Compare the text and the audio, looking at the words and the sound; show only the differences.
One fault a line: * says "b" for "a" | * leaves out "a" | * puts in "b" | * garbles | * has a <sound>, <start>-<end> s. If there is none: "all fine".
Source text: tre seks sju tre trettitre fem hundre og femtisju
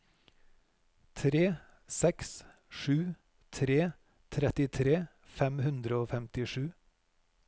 all fine